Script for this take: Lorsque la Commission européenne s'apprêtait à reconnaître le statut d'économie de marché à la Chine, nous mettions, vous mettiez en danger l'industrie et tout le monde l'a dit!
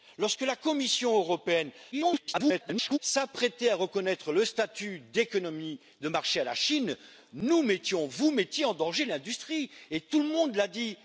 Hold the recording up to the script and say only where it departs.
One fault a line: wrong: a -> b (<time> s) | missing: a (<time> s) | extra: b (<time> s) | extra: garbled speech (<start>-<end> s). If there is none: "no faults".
extra: garbled speech (1.9-3.0 s)